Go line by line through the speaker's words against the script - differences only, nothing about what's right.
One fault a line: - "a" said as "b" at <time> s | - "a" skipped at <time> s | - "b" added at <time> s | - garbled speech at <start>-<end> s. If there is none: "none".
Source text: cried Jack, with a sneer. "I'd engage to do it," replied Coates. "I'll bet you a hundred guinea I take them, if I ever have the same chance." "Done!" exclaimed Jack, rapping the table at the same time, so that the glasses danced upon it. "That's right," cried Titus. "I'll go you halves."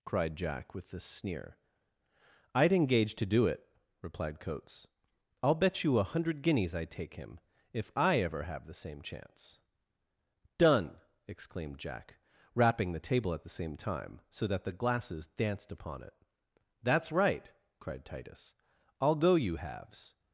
- "guinea" said as "guineas" at 6.4 s
- "them" said as "him" at 7.2 s